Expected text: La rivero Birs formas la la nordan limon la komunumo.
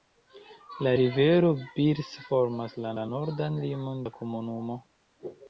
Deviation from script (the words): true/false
false